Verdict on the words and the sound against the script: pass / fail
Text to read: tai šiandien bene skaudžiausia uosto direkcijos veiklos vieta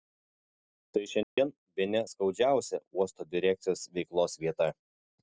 fail